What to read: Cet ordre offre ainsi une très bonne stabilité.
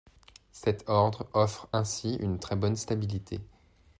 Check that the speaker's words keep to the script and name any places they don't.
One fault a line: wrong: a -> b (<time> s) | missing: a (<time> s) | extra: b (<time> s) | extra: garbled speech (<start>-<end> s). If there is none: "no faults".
no faults